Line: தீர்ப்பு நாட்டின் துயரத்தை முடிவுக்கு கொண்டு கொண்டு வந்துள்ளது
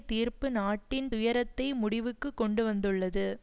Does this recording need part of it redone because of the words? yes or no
yes